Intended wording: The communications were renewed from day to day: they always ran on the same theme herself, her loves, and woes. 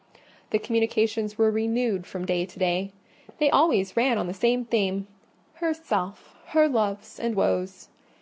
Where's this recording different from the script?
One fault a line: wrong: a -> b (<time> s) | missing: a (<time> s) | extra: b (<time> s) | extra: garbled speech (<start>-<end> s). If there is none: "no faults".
no faults